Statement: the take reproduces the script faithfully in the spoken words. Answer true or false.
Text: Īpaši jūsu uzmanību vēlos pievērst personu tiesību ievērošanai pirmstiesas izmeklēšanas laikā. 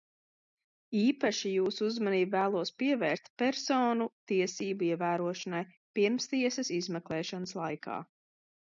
true